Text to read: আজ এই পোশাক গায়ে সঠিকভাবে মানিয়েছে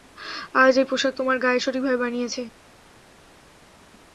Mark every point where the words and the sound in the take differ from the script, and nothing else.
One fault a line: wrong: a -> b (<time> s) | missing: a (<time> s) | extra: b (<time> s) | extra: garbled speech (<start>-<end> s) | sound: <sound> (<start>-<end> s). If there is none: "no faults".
extra: তোমার (1.2 s)